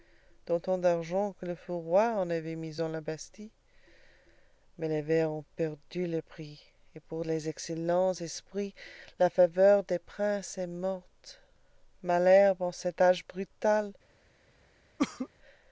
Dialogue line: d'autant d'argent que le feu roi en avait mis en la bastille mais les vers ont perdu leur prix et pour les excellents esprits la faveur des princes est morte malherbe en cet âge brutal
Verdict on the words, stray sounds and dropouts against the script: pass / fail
fail